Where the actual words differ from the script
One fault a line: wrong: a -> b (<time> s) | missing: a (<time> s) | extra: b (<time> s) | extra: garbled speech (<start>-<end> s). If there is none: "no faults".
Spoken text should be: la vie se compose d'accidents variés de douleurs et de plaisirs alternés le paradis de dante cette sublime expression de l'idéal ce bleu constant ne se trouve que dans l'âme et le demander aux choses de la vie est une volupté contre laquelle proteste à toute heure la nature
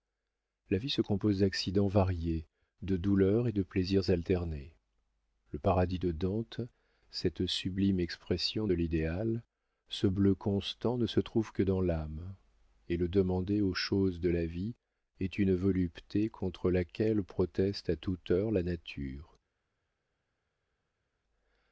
no faults